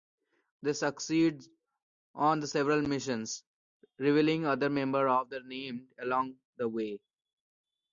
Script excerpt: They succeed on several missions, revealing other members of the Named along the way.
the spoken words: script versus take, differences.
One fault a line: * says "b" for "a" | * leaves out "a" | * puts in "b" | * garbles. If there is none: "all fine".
all fine